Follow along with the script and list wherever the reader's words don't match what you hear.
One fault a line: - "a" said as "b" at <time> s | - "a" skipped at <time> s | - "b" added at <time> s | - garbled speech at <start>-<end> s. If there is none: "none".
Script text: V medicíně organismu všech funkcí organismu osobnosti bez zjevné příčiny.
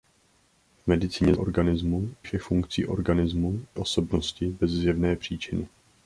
none